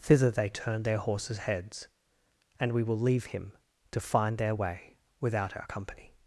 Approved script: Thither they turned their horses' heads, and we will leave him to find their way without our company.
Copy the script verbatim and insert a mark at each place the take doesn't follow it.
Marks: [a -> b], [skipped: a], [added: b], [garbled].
Thither they turned their horses' heads, and we will leave him to find their way without our company.